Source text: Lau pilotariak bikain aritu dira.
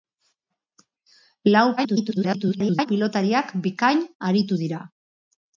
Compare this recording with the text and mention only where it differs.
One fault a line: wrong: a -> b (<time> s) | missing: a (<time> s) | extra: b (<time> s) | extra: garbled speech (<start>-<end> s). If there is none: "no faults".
extra: garbled speech (1.8-2.9 s)